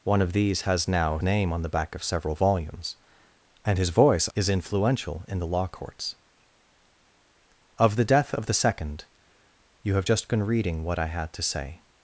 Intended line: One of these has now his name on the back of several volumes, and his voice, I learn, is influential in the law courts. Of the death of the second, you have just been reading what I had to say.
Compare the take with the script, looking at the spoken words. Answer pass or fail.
fail